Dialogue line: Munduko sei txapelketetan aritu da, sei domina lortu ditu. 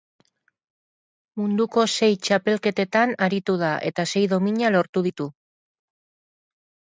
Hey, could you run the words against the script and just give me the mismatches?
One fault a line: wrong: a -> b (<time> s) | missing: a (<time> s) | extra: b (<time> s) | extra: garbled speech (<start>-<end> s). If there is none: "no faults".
extra: eta (3.9 s)